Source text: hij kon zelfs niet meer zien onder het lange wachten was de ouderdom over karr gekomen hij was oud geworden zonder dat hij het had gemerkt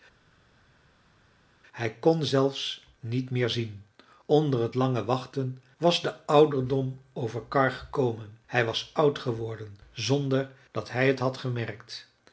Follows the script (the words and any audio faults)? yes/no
yes